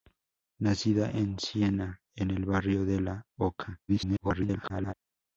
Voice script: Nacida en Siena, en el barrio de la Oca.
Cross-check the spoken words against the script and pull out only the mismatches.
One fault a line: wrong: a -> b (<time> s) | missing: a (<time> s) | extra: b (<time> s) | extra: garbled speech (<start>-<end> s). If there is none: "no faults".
extra: garbled speech (3.9-4.9 s)